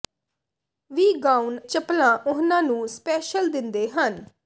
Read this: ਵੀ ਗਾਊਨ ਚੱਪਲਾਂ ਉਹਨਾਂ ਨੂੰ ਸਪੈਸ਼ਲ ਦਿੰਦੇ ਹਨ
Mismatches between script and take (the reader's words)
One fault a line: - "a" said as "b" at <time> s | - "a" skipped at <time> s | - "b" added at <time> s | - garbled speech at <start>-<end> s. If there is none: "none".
none